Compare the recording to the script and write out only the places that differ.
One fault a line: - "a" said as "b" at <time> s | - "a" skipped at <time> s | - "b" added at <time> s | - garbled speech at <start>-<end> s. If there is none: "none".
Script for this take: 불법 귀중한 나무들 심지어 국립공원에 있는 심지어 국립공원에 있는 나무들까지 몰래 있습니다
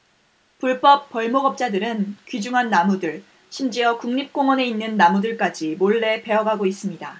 - "벌목업자들은" added at 1.1 s
- "심지어 국립공원에 있는 나무들까지 몰래" said as "나무들까지 몰래 베어 가고" at 5.0 s